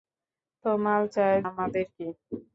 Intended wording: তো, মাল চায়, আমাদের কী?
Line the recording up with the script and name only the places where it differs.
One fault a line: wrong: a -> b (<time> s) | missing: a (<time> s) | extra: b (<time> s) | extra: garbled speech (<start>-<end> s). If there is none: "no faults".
no faults